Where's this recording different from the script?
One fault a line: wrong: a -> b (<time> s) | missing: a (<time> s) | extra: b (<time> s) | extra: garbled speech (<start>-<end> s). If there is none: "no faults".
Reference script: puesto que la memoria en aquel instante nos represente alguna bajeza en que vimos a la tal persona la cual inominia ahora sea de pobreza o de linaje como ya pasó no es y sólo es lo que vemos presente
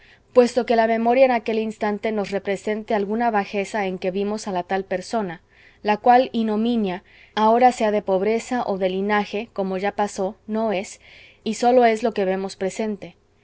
no faults